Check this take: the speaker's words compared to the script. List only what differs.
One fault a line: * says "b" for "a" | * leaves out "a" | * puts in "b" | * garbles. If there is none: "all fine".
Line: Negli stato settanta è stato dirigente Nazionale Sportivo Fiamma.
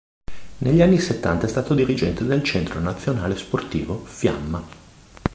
* says "anni" for "stato"
* puts in "del Centro"